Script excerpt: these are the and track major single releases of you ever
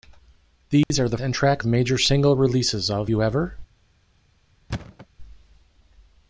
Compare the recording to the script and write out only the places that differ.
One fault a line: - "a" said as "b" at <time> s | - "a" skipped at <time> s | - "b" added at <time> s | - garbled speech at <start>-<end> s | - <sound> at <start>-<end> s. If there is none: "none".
- dropout at 0.8-0.9 s
- thud at 4.7-5.1 s